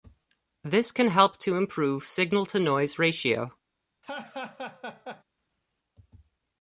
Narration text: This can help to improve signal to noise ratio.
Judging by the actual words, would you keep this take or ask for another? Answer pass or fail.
pass